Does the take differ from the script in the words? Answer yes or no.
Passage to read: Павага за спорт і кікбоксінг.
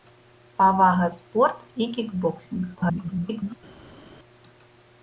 yes